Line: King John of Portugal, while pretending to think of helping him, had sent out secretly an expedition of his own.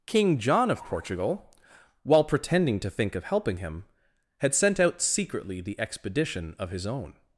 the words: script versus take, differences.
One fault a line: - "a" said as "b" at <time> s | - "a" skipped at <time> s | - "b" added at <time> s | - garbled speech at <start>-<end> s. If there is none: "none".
- "an" said as "the" at 5.6 s